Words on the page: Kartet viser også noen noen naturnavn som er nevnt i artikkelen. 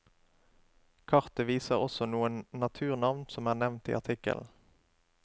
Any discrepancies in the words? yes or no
yes